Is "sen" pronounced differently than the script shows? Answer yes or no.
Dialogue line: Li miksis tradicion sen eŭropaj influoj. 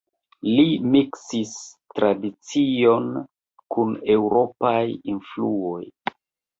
yes